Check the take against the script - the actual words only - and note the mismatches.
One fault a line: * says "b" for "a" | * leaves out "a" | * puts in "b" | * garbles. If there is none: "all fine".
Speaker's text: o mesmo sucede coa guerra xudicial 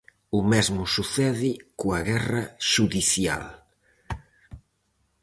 all fine